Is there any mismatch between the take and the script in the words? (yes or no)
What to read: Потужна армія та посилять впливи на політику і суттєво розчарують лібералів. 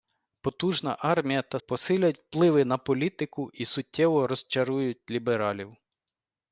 no